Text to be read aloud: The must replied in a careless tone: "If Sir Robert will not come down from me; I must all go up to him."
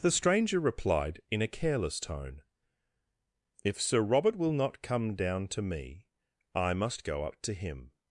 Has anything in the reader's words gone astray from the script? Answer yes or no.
yes